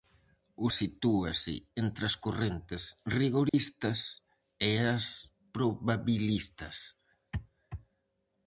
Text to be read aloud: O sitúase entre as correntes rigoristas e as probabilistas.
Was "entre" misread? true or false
false